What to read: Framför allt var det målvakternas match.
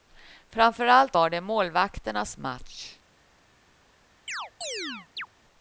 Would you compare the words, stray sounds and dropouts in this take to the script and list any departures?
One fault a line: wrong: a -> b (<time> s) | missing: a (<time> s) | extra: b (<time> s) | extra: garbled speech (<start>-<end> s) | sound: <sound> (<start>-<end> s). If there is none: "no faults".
sound: chirp (4.3-5.3 s)